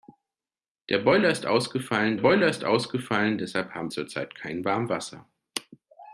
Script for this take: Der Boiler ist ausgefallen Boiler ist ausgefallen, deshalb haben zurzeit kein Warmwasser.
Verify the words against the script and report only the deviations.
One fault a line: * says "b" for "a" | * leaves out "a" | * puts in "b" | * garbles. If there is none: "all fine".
all fine